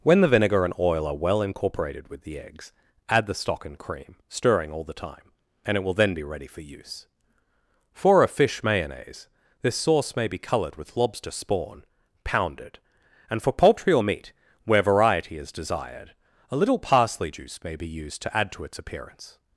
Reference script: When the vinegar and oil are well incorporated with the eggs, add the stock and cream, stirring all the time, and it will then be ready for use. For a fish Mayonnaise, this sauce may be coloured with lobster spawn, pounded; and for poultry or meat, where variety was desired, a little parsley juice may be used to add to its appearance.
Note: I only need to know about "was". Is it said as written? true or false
false